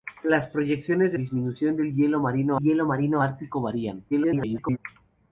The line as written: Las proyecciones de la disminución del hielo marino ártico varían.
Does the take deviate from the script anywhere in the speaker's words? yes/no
yes